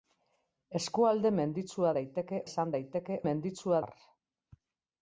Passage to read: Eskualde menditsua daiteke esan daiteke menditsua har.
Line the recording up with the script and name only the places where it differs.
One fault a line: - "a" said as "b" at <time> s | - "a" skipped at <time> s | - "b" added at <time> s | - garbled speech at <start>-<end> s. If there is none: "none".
none